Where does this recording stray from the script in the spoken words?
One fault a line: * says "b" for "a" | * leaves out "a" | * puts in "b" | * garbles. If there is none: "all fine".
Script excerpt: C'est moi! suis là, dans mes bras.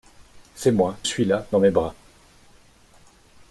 all fine